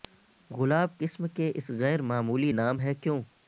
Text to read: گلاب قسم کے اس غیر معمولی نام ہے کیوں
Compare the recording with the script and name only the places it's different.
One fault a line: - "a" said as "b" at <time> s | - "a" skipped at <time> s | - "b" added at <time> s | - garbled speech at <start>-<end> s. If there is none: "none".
none